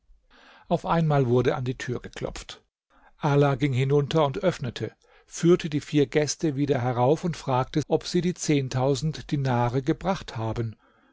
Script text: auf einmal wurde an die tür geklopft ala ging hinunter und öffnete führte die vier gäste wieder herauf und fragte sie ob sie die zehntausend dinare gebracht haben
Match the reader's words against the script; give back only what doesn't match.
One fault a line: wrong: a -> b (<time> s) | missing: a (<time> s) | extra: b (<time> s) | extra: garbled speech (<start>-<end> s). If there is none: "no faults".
missing: sie (7.8 s)